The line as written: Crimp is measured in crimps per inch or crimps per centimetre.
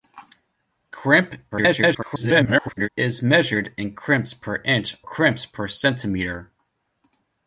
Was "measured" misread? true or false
false